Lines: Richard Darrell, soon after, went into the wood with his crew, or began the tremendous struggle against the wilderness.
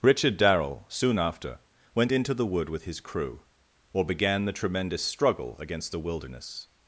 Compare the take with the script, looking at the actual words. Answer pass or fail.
pass